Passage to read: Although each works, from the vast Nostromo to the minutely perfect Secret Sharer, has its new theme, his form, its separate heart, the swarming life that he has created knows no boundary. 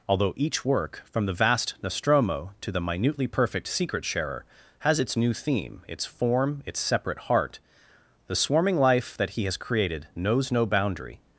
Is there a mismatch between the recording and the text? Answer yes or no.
yes